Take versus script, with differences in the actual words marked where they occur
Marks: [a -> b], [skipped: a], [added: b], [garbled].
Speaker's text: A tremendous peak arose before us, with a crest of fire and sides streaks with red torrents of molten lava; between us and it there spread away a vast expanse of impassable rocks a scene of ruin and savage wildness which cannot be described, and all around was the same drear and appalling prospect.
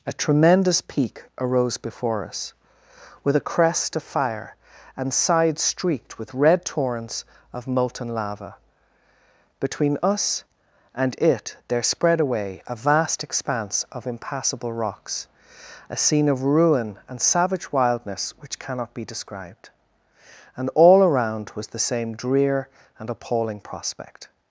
A tremendous peak arose before us, with a crest of fire and sides [streaks -> streaked] with red torrents of molten lava; between us and it there spread away a vast expanse of impassable rocks a scene of ruin and savage wildness which cannot be described, and all around was the same drear and appalling prospect.